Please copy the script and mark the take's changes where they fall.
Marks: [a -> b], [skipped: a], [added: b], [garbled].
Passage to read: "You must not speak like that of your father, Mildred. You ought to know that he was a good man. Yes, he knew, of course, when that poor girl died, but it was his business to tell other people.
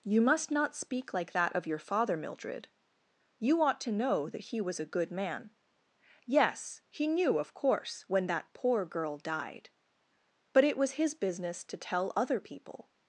"You must not speak like that of your father, Mildred. You ought to know that he was a good man. Yes, he knew, of course, when that poor girl died, but it was his business to tell other people.